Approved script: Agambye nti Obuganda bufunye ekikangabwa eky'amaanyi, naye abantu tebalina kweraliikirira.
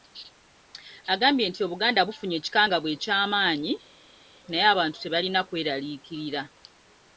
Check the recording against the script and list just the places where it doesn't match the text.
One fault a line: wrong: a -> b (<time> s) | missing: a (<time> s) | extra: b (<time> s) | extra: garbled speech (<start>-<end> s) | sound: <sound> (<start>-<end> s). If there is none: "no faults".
no faults